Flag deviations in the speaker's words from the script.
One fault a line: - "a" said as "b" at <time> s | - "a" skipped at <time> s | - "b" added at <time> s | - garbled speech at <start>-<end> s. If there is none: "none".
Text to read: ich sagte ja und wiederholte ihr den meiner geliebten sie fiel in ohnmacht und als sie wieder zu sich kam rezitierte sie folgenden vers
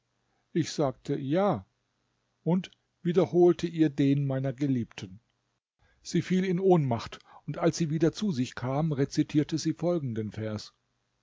none